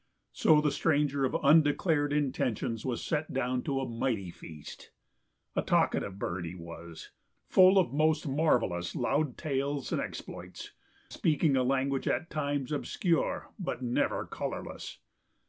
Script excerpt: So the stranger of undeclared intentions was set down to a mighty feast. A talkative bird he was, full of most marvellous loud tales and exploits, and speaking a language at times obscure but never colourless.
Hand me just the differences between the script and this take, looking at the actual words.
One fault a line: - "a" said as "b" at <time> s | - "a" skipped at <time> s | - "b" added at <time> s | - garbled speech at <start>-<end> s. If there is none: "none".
- "and" skipped at 10.7 s